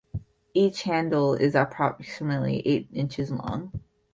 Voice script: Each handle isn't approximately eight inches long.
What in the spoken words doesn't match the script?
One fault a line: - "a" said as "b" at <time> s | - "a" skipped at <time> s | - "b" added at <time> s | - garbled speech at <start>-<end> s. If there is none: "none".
- "isn't" said as "is" at 1.4 s